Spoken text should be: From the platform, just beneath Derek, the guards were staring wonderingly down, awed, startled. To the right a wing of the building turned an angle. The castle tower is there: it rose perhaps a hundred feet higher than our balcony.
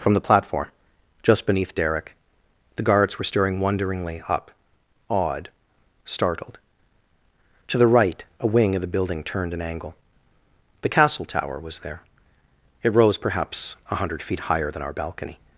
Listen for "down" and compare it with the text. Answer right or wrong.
wrong